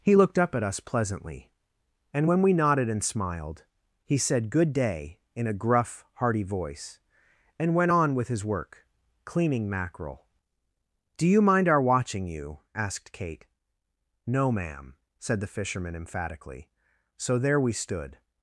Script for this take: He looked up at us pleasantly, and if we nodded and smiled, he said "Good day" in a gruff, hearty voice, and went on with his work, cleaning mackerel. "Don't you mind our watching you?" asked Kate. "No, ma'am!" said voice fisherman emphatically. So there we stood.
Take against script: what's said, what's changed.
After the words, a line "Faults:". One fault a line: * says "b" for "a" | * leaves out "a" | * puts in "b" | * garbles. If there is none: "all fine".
He looked up at us pleasantly, and when we nodded and smiled, he said "Good day" in a gruff, hearty voice, and went on with his work, cleaning mackerel. "Do you mind our watching you?" asked Kate. "No, ma'am!" said the fisherman emphatically. So there we stood.
Faults:
* says "when" for "if"
* says "Do" for "Don't"
* says "the" for "voice"